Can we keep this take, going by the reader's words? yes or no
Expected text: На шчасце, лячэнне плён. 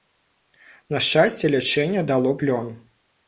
no